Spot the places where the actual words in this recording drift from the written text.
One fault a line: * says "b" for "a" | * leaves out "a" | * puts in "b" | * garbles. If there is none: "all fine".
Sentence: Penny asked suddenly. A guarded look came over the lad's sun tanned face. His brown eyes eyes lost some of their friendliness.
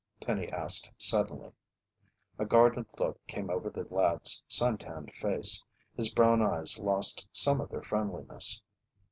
* leaves out "eyes"